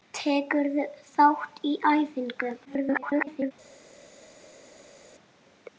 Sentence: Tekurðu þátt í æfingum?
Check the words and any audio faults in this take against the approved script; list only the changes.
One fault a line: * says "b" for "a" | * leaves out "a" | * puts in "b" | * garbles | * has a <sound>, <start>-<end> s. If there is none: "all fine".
* garbles